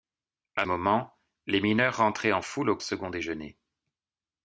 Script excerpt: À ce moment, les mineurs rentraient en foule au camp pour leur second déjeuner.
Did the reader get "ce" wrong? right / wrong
wrong